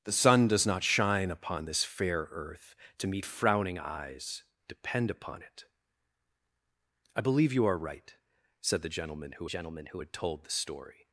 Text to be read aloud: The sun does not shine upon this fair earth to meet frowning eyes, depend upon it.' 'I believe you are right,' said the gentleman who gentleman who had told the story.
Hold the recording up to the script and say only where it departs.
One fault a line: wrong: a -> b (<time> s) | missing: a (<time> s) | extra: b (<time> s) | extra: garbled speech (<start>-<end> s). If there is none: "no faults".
no faults